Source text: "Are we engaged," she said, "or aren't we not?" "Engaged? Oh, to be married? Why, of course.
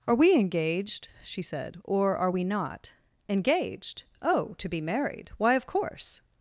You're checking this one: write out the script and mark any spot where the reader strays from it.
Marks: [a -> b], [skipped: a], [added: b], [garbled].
"Are we engaged," she said, "or [aren't -> are] we not?" "Engaged? Oh, to be married? Why, of course.